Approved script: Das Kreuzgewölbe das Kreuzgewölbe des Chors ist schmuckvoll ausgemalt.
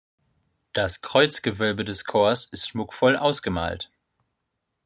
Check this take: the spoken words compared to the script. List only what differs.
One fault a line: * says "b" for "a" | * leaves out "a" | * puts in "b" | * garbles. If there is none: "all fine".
* leaves out "das Kreuzgewölbe"